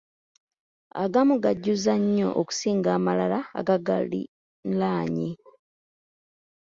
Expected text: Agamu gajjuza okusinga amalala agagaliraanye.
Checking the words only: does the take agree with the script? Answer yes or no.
no